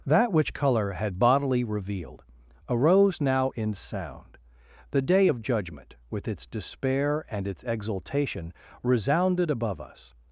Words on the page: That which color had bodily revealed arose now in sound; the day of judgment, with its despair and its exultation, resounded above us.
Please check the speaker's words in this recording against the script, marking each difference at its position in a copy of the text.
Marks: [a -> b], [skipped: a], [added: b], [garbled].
That which color had bodily revealed arose now in sound; the day of judgment, with its despair and its exultation, resounded above us.